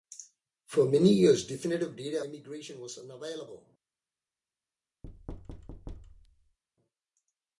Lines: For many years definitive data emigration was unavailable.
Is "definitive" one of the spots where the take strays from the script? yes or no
no